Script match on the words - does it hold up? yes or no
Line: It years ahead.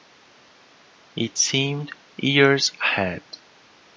no